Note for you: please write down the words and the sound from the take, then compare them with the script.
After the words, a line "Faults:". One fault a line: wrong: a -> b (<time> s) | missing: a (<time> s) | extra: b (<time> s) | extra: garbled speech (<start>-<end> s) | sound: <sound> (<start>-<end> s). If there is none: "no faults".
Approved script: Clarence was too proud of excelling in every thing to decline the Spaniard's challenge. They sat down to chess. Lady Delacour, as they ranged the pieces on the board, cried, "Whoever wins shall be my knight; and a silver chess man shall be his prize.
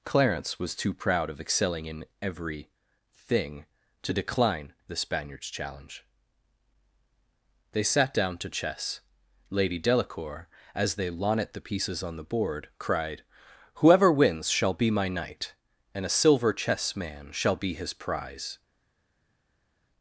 Clarence was too proud of excelling in every thing to decline the Spaniard's challenge. They sat down to chess. Lady Delacour, as they lonnet the pieces on the board, cried, "Whoever wins shall be my knight; and a silver chess man shall be his prize.
Faults:
wrong: ranged -> lonnet (11.1 s)